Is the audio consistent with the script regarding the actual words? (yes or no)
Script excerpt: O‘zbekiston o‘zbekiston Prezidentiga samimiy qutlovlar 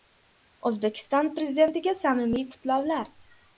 no